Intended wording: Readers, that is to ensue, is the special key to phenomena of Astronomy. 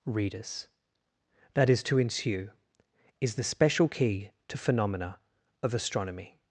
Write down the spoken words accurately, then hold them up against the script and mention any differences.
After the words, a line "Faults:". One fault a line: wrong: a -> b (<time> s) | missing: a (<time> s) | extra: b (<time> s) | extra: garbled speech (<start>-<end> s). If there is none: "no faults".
Readers, that is to ensue, is the special key to phenomena of Astronomy.
Faults:
no faults